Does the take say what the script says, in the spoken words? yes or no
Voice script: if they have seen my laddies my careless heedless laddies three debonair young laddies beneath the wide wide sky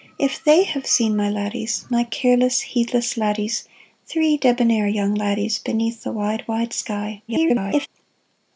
no